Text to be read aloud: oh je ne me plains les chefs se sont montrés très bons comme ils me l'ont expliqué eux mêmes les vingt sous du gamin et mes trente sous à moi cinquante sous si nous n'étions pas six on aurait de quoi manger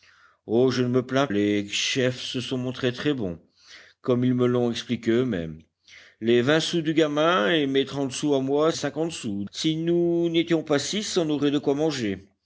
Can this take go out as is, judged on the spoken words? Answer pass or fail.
pass